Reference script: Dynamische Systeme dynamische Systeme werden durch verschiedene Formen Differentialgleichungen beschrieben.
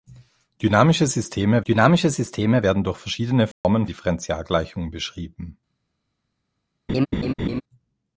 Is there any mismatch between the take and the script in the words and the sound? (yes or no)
yes